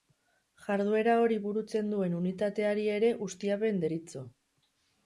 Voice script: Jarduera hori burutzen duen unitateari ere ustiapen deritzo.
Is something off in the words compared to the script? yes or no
no